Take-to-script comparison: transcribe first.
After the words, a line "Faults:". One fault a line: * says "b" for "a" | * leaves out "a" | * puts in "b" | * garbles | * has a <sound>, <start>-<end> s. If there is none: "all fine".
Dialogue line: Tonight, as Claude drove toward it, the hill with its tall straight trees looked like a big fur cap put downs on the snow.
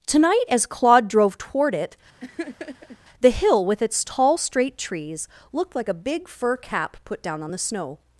Tonight, as Claude drove toward it, the hill with its tall straight trees looked like a big fur cap put down on the snow.
Faults:
* has a laugh, 2.2-3.0 s
* says "down" for "downs"